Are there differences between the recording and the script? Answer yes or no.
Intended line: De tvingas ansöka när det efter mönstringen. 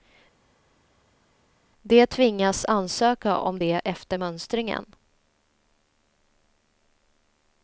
yes